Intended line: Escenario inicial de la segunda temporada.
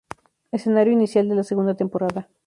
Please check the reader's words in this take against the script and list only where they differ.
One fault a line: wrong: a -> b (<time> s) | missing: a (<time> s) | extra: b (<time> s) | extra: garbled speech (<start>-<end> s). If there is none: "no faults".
no faults